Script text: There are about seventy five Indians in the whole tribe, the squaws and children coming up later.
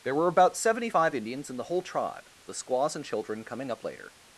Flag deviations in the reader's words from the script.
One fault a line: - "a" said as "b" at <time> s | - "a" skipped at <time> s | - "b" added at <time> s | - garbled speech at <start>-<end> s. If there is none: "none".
- "are" said as "were" at 0.1 s